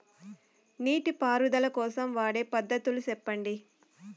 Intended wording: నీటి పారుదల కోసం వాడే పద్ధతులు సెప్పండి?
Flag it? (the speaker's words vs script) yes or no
no